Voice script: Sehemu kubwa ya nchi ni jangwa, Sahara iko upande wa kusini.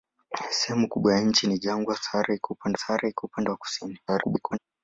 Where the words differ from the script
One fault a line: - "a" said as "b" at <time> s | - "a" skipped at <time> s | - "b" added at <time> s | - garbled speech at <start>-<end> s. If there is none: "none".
- "Sahara iko upande" added at 2.7 s
- garbled speech at 4.1-4.6 s